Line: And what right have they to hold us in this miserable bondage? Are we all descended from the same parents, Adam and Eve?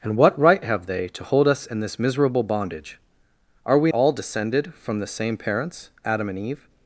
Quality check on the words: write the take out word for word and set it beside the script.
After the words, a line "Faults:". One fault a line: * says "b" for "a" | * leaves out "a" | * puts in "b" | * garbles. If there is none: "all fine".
And what right have they to hold us in this miserable bondage? Are we all descended from the same parents, Adam and Eve?
Faults:
all fine